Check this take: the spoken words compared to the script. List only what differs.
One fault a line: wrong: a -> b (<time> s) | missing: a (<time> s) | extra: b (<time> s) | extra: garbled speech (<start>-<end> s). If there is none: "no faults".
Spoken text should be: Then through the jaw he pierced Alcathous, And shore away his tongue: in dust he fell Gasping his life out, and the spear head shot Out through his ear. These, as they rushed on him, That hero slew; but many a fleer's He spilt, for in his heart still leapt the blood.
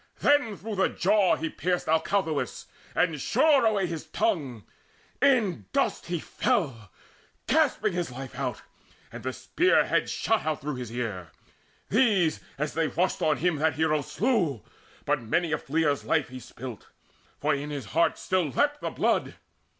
extra: life (16.0 s)